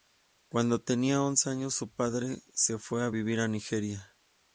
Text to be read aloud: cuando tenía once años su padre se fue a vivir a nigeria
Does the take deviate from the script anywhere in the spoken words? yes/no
no